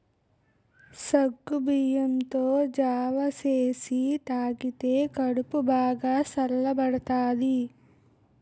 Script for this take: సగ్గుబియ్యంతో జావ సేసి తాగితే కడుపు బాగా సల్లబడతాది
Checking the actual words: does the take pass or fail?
pass